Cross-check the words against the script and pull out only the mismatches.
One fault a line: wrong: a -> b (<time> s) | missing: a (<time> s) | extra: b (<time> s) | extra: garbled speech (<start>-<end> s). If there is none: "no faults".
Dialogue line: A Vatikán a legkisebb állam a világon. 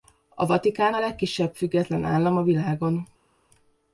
extra: független (1.5 s)